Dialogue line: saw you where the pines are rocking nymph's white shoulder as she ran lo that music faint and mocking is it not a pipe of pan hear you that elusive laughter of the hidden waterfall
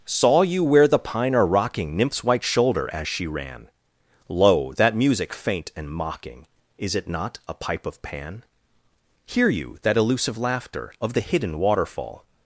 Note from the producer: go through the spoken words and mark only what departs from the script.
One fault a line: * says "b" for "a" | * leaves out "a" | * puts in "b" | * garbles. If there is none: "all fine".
* says "pine" for "pines"